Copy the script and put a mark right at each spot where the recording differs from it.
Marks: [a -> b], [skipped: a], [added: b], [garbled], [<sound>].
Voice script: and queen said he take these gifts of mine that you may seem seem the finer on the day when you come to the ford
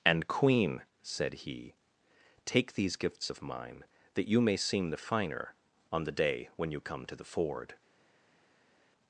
and queen said he take these gifts of mine that you may seem [skipped: seem] the finer on the day when you come to the ford